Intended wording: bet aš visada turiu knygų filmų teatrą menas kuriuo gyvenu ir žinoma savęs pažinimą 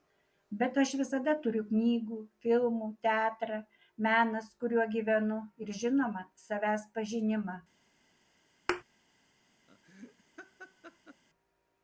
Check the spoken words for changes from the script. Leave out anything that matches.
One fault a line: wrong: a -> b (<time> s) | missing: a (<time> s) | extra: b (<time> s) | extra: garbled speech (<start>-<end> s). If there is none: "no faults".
no faults